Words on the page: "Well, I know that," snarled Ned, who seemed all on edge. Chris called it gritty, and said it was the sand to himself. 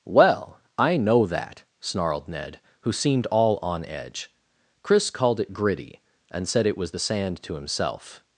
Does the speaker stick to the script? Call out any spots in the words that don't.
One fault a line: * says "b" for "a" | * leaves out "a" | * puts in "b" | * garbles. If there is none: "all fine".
all fine